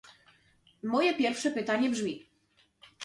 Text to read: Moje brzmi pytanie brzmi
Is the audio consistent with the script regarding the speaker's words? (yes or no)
no